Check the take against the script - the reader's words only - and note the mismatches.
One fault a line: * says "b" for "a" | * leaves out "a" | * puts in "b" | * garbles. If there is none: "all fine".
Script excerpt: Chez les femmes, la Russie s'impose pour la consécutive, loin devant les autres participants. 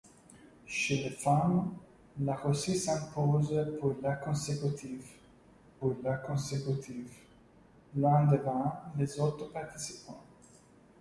* puts in "pour la consécutive"